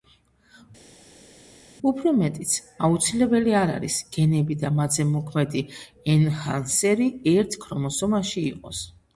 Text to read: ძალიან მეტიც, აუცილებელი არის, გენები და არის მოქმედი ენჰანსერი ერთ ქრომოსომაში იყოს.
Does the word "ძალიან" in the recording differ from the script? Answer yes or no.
yes